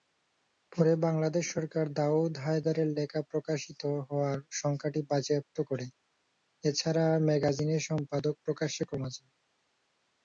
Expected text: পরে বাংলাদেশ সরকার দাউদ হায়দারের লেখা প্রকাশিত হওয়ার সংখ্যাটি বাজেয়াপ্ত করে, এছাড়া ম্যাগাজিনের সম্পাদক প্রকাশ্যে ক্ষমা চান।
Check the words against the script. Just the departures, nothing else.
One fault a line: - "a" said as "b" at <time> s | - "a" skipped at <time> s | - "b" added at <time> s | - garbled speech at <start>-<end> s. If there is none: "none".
none